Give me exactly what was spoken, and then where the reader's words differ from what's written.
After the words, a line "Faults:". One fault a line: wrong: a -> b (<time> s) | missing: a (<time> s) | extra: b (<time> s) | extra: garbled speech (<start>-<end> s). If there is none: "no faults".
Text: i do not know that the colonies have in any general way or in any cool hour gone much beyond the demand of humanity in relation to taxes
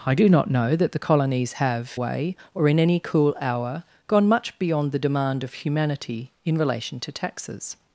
i do not know that the colonies have way or in any cool hour gone much beyond the demand of humanity in relation to taxes
Faults:
missing: in any general (2.0 s)